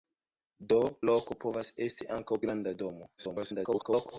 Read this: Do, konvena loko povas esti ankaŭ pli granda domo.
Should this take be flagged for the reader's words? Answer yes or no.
yes